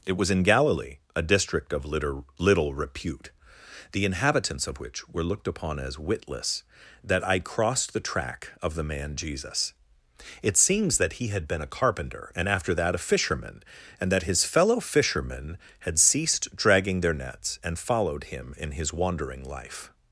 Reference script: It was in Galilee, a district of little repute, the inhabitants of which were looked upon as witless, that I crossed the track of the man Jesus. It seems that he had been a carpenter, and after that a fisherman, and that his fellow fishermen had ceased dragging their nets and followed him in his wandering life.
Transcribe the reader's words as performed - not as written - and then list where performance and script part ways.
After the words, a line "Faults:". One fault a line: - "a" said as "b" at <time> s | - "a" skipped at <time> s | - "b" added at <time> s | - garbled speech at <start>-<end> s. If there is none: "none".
It was in Galilee, a district of little little repute, the inhabitants of which were looked upon as witless, that I crossed the track of the man Jesus. It seems that he had been a carpenter, and after that a fisherman, and that his fellow fishermen had ceased dragging their nets and followed him in his wandering life.
Faults:
- "little" added at 2.4 s